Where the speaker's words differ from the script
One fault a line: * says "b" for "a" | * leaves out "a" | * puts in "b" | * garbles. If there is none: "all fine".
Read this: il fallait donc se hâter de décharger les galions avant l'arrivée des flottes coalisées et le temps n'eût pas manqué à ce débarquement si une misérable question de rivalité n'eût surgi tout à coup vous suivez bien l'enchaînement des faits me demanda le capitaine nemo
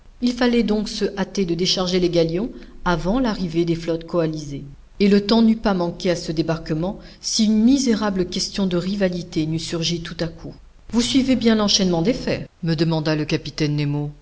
all fine